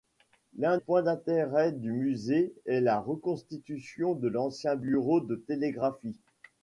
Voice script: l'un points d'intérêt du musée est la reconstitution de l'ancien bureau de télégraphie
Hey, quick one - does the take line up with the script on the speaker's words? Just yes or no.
yes